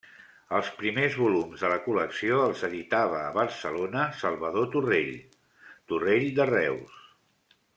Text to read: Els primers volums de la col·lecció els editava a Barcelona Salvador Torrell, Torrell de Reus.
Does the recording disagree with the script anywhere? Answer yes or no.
no